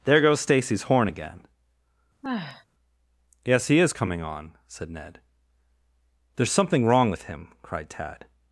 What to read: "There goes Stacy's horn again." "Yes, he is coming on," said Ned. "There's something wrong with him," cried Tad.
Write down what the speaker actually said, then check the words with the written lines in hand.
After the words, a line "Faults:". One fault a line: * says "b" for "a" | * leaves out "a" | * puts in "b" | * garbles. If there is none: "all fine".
"There goes Stacy's horn again." "Yes, he is coming on," said Ned. "There's something wrong with him," cried Tad.
Faults:
all fine